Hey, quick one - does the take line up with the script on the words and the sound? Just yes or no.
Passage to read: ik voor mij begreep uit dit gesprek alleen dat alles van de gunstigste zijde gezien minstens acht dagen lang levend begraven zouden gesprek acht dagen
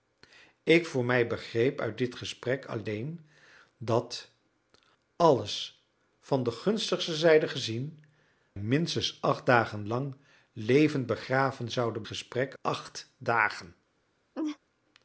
no